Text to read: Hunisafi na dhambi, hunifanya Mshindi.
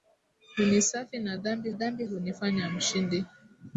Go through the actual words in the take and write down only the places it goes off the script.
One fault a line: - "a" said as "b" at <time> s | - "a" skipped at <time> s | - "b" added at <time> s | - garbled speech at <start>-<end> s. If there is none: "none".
- "dhambi" added at 1.7 s